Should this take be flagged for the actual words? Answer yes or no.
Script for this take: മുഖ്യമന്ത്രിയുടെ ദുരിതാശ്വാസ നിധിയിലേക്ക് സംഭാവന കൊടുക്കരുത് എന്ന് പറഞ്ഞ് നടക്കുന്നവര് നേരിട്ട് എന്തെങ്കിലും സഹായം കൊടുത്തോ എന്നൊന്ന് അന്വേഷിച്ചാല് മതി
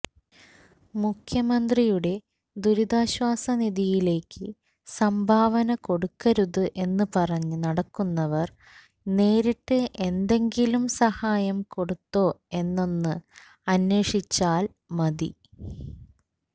no